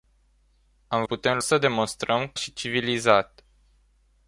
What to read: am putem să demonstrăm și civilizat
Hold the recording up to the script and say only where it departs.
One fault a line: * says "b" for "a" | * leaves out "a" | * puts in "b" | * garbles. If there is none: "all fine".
all fine